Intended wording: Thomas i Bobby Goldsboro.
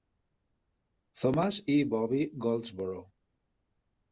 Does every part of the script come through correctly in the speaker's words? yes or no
yes